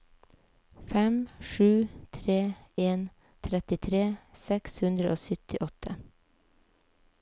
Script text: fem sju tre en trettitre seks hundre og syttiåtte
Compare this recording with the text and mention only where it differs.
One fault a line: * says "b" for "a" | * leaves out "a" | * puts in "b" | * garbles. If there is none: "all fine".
all fine